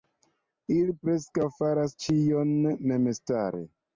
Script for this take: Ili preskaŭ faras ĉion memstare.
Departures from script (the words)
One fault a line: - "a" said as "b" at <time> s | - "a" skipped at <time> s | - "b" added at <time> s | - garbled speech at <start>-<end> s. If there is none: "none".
none